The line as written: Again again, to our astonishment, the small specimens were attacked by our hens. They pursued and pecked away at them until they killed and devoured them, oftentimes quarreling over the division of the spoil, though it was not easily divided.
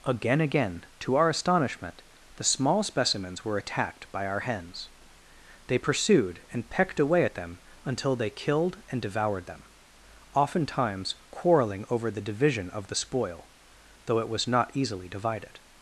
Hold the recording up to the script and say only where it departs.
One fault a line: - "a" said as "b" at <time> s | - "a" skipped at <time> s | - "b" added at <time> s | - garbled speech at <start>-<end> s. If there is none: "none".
none